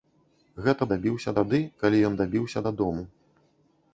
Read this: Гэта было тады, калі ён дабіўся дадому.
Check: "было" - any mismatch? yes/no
yes